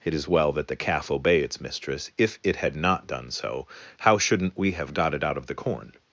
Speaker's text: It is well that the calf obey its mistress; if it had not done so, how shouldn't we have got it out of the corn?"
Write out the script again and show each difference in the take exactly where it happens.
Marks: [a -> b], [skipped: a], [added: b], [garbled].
It is well that the calf obey its mistress; if it had not done so, how shouldn't we have got it out of the corn?"